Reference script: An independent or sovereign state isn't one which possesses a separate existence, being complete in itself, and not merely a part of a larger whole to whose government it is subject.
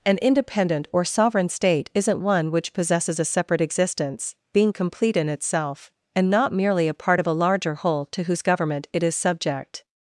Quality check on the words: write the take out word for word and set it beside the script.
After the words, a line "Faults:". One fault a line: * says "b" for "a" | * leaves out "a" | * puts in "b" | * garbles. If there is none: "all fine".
An independent or sovereign state isn't one which possesses a separate existence, being complete in itself, and not merely a part of a larger whole to whose government it is subject.
Faults:
all fine